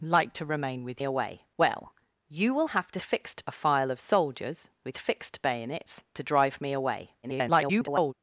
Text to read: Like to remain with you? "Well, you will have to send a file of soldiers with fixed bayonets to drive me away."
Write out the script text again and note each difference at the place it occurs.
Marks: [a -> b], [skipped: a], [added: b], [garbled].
Like to remain with [you? -> away] "Well, you will have to [send -> fixed] a file of soldiers with fixed bayonets to drive me away." [garbled]